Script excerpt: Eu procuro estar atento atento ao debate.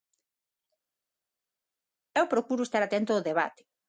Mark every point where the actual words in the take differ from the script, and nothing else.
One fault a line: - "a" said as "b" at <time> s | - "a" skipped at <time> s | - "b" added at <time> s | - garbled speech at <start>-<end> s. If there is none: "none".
- "atento" skipped at 3.1 s